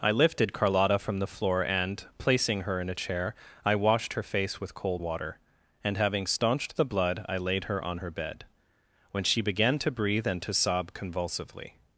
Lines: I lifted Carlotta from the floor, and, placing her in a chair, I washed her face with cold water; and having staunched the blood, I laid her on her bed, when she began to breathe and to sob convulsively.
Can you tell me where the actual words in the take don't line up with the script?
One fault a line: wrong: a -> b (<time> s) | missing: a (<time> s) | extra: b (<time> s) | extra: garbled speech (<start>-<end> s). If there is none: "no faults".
no faults